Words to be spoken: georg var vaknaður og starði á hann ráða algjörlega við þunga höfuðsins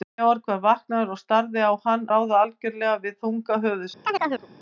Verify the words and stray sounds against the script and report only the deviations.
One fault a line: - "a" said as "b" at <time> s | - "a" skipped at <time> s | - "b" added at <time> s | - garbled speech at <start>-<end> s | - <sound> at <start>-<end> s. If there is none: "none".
- chirp at 4.0-4.5 s